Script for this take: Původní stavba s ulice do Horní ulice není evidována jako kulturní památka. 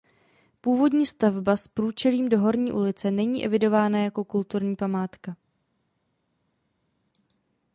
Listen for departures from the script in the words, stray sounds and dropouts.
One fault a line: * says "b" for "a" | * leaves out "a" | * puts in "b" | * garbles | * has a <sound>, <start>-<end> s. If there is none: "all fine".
* says "průčelím" for "ulice"